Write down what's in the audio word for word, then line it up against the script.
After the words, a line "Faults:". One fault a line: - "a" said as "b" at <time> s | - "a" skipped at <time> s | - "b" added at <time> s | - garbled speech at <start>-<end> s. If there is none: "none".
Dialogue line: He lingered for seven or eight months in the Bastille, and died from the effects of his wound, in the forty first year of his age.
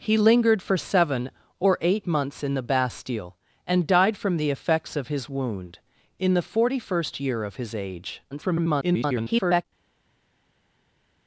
He lingered for seven or eight months in the Bastille, and died from the effects of his wound, in the forty first year of his age. [garbled]
Faults:
- garbled speech at 8.3-9.6 s